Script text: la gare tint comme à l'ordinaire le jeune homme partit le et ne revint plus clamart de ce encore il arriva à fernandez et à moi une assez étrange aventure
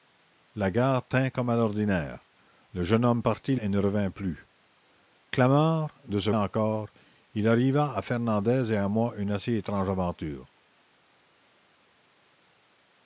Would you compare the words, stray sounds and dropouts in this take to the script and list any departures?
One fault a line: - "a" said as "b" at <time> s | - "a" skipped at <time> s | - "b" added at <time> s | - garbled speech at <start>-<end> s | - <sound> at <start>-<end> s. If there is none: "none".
none